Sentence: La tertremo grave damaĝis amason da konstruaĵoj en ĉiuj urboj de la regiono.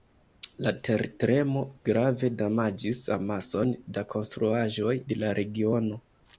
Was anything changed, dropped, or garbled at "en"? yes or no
yes